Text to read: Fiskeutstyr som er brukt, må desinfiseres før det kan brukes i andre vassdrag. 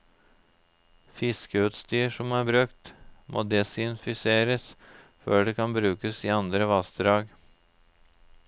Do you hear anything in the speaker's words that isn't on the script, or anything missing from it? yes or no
no